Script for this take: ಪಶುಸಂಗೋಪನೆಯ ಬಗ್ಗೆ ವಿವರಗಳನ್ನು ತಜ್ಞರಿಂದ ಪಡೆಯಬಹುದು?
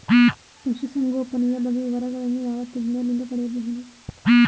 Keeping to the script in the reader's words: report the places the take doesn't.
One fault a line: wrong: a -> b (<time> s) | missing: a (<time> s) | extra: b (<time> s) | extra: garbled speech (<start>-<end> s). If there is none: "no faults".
extra: ಯಾವ (2.4 s)